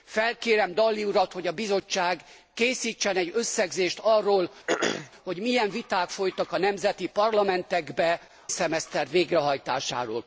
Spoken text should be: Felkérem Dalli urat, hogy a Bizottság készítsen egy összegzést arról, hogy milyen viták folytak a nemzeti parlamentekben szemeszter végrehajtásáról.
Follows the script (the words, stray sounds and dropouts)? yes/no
no